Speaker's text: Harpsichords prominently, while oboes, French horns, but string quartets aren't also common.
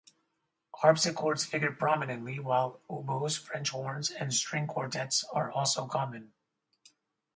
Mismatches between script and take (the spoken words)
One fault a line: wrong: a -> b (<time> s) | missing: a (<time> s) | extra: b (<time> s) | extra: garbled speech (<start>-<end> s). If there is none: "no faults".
extra: figure (1.4 s)
wrong: but -> and (4.1 s)
wrong: aren't -> are (5.2 s)